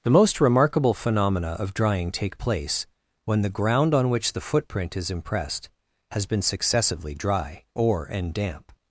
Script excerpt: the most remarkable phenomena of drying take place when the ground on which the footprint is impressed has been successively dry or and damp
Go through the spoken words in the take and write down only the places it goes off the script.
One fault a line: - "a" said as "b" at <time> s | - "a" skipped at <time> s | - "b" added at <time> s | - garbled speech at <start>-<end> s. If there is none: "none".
none